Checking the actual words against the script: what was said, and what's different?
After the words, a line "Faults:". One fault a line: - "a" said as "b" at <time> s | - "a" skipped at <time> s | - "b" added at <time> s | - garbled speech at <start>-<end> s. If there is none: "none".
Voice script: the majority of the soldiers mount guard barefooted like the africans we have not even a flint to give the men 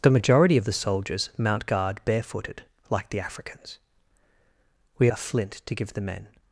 the majority of the soldiers mount guard barefooted like the africans we a flint to give the men
Faults:
- "have not even" skipped at 5.1 s